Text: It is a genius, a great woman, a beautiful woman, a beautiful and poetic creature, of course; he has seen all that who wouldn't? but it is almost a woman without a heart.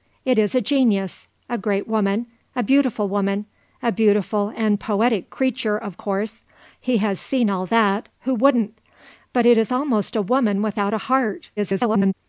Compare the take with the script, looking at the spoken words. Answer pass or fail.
fail